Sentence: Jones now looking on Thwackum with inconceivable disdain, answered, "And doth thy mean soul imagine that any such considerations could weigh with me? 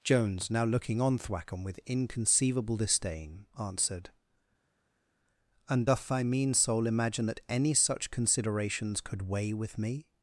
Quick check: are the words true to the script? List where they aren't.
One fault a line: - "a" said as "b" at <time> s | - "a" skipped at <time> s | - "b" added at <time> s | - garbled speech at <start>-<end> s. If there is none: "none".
none